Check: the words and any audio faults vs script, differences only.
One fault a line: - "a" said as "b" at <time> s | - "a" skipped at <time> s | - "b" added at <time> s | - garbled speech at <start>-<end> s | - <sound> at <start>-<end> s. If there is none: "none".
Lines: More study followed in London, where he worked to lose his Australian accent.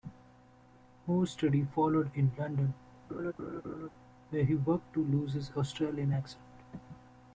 - laugh at 3.1-3.9 s